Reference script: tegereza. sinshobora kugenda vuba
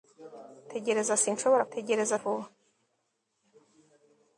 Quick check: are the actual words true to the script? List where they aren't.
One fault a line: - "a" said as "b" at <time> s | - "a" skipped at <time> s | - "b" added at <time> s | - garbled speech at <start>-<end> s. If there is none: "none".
- "kugenda" said as "tegereza" at 1.7 s